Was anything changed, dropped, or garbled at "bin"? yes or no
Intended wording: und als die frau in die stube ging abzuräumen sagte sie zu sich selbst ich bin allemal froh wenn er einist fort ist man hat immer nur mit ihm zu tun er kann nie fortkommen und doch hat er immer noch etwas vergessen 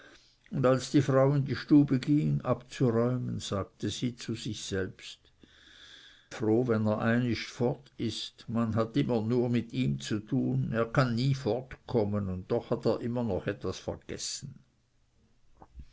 yes